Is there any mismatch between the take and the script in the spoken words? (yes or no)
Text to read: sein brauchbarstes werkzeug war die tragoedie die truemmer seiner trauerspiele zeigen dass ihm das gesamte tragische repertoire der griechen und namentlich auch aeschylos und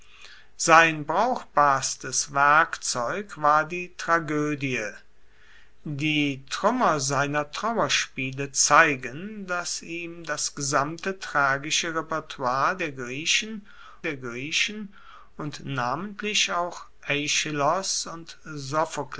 yes